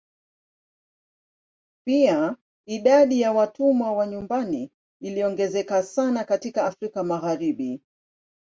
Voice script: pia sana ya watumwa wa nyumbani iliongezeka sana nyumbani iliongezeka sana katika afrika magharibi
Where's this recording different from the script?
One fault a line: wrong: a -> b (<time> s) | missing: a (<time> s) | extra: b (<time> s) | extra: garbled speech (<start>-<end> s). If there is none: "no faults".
wrong: sana -> idadi (2.6 s)
missing: nyumbani iliongezeka sana (6.2 s)